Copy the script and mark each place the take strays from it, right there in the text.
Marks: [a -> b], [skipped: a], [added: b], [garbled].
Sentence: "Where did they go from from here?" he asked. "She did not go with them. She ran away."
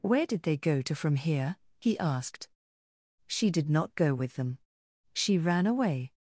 "Where did they go [from -> to] from here?" he asked. "She did not go with them. She ran away."